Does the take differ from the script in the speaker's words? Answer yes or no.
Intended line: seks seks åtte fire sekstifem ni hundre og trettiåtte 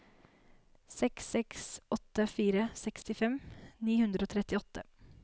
no